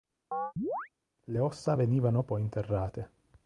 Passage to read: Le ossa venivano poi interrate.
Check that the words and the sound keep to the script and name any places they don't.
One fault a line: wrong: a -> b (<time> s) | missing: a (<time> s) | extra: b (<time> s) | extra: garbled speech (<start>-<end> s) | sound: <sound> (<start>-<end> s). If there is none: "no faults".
sound: chirp (0.3-0.9 s)